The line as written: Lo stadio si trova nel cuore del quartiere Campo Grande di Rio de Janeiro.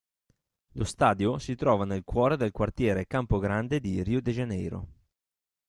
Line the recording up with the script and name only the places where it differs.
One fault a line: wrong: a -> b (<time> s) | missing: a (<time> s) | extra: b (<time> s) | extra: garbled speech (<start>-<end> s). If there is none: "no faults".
no faults